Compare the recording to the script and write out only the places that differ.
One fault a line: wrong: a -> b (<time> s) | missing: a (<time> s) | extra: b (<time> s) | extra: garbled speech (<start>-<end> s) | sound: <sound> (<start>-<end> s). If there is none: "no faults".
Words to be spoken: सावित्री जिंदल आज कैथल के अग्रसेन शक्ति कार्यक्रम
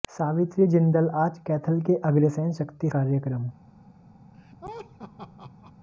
sound: laugh (4.3-5.7 s)